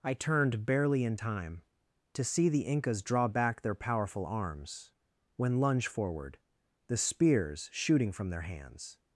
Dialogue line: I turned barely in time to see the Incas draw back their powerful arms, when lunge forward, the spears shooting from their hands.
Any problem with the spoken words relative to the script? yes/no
no